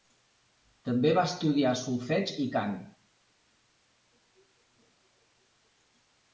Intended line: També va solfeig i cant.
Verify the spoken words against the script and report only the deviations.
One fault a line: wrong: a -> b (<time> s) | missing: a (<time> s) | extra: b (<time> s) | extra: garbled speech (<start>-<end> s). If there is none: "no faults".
extra: estudiar (1.3 s)